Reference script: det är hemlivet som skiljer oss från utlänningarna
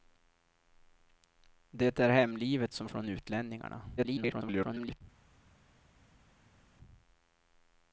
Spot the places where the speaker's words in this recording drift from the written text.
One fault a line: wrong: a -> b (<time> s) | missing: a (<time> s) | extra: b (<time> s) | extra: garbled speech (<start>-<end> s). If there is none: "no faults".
missing: skiljer oss (2.9 s)
extra: garbled speech (4.0-5.0 s)